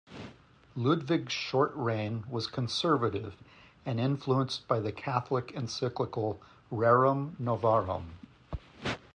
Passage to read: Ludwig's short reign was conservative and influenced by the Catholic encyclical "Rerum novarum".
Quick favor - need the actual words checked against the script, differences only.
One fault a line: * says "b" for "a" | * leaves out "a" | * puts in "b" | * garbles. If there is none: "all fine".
all fine